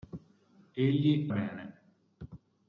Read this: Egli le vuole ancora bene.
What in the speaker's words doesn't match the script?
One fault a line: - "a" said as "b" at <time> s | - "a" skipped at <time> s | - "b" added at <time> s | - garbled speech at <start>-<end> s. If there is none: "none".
- "le vuole ancora" skipped at 1.3 s